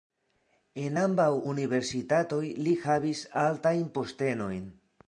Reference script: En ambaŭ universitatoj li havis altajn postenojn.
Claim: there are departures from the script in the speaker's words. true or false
false